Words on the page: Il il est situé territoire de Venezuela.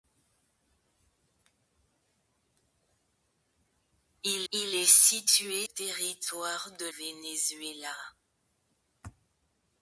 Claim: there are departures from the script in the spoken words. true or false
false